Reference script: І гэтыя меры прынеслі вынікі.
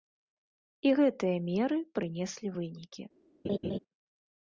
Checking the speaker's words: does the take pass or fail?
pass